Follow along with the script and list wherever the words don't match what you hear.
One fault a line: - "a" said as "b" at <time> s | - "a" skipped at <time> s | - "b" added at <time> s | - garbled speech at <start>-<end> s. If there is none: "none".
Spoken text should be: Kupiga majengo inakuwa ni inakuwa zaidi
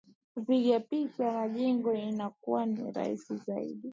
- "picha" added at 0.8 s
- "inakuwa" said as "rahisi" at 2.9 s